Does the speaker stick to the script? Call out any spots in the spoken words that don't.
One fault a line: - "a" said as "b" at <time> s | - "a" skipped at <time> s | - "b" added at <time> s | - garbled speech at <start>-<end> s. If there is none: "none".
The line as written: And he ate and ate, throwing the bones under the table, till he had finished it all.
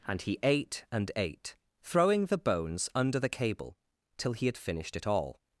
- "table" said as "cable" at 3.3 s